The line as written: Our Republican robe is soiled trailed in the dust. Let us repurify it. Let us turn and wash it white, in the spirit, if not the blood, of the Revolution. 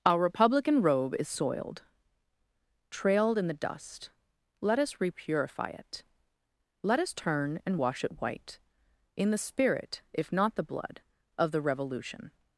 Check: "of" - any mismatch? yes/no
no